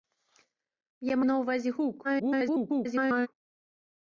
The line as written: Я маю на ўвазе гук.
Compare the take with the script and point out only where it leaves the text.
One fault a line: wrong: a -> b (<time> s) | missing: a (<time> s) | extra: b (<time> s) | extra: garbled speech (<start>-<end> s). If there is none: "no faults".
missing: маю (1.1 s)
extra: garbled speech (2.0-3.3 s)